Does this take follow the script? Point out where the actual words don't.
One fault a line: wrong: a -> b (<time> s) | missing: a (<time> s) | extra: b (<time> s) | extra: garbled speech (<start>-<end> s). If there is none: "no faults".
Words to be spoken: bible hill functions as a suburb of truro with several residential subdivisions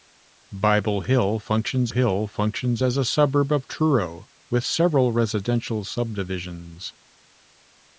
extra: hill functions (1.9 s)